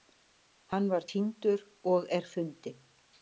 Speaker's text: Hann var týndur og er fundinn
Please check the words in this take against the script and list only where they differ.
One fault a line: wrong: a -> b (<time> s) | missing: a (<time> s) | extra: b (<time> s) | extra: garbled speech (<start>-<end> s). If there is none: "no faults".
no faults